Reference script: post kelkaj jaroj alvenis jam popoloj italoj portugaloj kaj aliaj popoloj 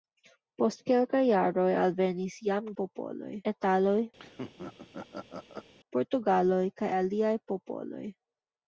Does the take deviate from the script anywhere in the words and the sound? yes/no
yes